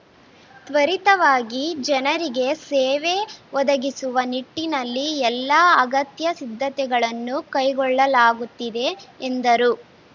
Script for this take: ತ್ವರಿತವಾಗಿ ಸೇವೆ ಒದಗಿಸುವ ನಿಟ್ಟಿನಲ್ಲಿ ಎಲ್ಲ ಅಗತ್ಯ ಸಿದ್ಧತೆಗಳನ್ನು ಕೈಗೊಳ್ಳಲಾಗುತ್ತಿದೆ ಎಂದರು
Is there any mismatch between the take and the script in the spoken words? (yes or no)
yes